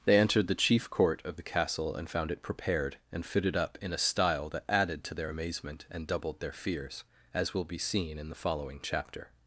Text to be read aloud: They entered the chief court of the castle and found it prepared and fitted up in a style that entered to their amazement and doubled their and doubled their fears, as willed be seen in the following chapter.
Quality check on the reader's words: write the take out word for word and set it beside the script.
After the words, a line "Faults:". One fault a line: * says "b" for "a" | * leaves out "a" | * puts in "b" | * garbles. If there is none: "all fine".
They entered the chief court of the castle and found it prepared and fitted up in a style that added to their amazement and doubled their fears, as will be seen in the following chapter.
Faults:
* says "added" for "entered"
* leaves out "and doubled their"
* says "will" for "willed"